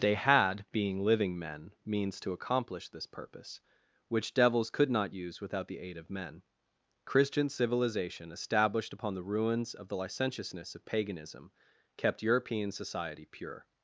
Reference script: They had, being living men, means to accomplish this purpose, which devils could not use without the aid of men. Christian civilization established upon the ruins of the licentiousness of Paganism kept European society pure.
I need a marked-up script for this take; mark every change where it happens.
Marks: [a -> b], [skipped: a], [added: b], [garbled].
They had, being living men, means to accomplish this purpose, which devils could not use without the aid of men. Christian civilization established upon the ruins of the licentiousness of Paganism kept European society pure.